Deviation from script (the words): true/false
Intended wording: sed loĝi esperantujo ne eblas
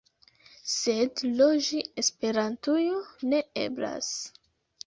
false